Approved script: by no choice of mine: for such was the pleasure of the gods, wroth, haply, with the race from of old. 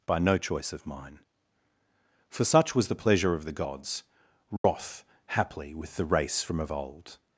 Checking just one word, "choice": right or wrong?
right